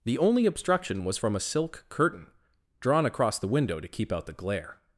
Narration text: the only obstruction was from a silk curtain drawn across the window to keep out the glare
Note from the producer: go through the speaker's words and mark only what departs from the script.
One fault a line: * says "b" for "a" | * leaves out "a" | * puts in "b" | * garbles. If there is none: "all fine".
all fine